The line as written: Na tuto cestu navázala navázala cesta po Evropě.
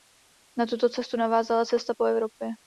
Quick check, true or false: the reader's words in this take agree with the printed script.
false